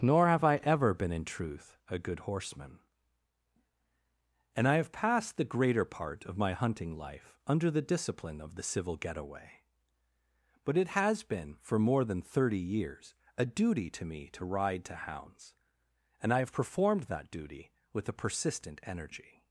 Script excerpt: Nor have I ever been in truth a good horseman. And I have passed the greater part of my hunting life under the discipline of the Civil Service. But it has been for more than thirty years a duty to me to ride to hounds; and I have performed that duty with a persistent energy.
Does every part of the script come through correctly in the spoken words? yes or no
no